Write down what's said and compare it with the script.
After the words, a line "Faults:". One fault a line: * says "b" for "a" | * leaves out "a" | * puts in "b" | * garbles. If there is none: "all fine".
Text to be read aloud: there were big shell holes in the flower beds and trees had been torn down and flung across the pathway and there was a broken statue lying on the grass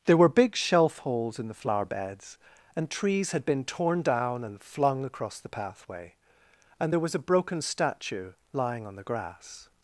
there were big shelf holes in the flower beds and trees had been torn down and flung across the pathway and there was a broken statue lying on the grass
Faults:
* says "shelf" for "shell"